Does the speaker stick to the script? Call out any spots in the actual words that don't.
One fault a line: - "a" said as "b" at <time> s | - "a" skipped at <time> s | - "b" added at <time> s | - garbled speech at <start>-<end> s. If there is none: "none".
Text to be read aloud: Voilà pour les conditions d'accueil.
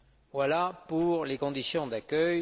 none